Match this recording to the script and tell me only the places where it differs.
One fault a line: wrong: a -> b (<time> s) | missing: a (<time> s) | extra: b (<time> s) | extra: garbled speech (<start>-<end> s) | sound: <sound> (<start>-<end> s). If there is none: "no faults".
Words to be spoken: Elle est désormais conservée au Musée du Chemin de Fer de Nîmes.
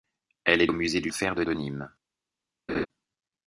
missing: désormais conservée (0.7 s)
missing: Chemin (1.1 s)
extra: de (1.4 s)
sound: laugh (2.7-2.9 s)